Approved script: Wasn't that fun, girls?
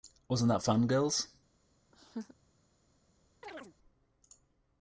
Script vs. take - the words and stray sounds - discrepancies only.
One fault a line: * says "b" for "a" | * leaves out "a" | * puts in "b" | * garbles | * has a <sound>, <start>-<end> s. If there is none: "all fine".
* has a laugh, 1.9-2.4 s
* has a chirp, 3.4-3.7 s